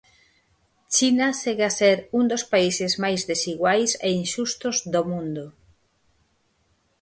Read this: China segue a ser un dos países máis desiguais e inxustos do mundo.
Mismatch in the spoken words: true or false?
false